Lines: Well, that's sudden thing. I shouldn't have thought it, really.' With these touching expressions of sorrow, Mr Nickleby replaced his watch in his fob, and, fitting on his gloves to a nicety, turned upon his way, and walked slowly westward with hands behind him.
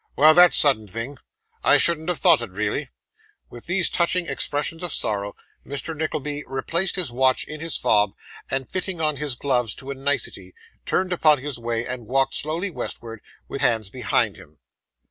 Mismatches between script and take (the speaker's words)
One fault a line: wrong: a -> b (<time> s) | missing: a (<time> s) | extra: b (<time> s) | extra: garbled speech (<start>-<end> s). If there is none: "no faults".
no faults